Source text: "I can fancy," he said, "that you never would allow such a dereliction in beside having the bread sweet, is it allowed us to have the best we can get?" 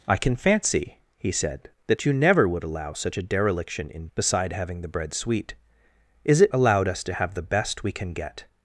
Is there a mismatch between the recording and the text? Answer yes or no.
no